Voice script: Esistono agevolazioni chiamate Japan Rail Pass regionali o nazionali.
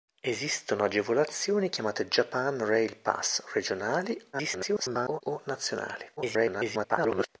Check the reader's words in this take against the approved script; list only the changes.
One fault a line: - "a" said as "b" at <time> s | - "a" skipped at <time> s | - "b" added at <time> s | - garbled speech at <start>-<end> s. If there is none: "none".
- garbled speech at 4.3-5.2 s
- garbled speech at 6.2-7.3 s